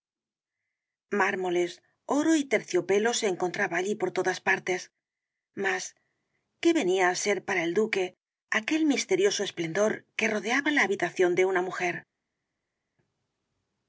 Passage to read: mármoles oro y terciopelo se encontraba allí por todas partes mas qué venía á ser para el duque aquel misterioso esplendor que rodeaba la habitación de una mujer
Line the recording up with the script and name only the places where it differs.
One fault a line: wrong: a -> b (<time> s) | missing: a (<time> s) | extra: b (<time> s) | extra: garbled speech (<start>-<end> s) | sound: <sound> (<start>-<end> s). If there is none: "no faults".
no faults